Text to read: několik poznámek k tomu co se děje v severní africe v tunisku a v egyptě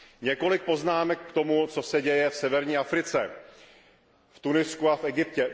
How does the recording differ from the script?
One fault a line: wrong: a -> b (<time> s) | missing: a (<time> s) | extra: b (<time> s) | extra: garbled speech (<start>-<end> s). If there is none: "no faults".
no faults